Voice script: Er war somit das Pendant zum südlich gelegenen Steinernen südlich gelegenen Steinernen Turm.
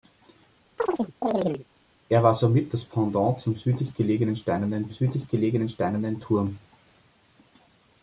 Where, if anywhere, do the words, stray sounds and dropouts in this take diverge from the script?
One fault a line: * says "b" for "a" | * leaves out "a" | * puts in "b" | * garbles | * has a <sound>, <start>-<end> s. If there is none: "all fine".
* has a chirp, 0.8-1.7 s